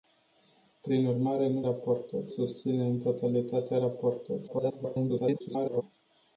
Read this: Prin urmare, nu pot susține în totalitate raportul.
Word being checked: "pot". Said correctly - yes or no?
no